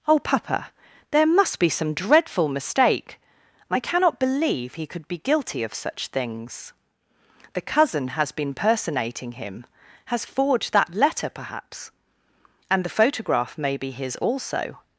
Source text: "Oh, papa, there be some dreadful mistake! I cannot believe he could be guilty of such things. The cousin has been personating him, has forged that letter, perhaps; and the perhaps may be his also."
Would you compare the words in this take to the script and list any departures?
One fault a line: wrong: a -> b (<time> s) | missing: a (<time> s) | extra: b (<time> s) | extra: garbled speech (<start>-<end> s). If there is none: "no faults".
extra: must (1.3 s)
wrong: perhaps -> photograph (13.0 s)